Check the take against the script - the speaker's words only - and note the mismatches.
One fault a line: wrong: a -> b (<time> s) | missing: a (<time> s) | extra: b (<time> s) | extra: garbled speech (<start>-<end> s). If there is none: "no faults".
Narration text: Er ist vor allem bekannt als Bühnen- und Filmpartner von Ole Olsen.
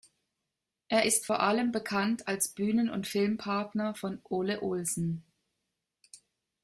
no faults